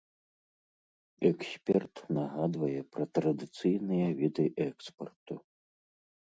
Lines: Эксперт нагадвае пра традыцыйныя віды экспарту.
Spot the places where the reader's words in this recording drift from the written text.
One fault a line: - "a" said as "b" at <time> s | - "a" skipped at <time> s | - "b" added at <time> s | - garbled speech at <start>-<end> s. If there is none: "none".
none